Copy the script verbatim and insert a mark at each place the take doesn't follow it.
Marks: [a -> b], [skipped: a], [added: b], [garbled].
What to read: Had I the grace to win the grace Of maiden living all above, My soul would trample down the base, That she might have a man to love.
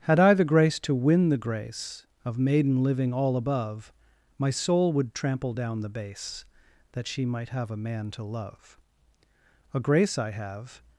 Had I the grace to win the grace Of maiden living all above, My soul would trample down the base, That she might have a man to love. [added: A grace I have]